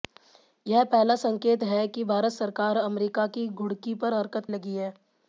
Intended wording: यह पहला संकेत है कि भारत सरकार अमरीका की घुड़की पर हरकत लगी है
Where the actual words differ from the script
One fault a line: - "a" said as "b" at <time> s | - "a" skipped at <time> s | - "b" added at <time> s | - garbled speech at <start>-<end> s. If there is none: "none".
none